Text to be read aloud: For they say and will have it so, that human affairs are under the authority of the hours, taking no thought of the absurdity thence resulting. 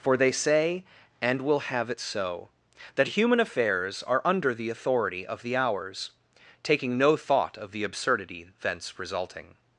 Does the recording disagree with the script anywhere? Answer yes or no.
no